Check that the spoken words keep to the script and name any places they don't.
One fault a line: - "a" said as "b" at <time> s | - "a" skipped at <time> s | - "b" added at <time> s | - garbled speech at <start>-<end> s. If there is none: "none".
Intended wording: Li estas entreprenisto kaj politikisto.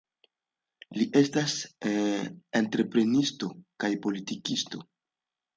none